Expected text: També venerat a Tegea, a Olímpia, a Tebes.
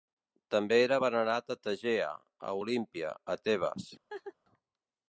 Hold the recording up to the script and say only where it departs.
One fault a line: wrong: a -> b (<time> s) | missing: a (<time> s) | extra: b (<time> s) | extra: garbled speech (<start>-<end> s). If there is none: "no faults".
extra: era (0.8 s)